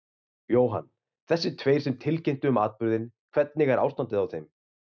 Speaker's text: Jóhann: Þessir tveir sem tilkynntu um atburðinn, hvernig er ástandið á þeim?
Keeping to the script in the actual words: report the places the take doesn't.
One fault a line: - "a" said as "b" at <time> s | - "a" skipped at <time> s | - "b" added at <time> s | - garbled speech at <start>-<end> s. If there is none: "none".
none